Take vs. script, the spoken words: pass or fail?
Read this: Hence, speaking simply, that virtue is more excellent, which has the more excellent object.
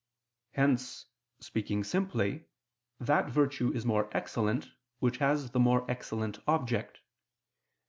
pass